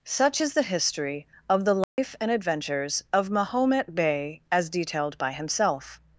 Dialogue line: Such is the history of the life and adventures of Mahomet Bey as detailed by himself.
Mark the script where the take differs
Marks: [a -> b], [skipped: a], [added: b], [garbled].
Such is the history of the life and adventures of Mahomet Bey as detailed by himself.